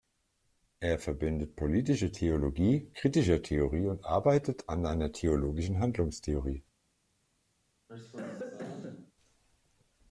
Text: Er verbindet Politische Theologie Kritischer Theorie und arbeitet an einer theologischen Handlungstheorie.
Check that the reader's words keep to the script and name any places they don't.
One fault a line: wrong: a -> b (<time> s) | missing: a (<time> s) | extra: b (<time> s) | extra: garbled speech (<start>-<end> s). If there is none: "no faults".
no faults